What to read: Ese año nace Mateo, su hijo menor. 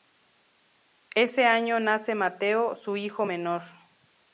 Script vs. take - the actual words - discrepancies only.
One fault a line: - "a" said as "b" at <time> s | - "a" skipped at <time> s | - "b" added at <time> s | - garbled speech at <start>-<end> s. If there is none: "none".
none